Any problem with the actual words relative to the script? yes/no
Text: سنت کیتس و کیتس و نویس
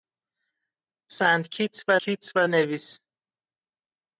no